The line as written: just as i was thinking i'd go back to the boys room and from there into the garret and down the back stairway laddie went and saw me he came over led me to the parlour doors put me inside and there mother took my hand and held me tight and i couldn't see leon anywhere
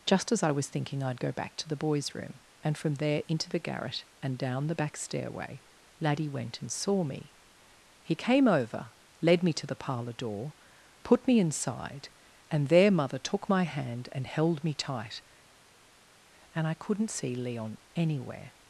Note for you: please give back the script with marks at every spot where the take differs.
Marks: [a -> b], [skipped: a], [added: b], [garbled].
just as i was thinking i'd go back to the boys room and from there into the garret and down the back stairway laddie went and saw me he came over led me to the parlour [doors -> door] put me inside and there mother took my hand and held me tight and i couldn't see leon anywhere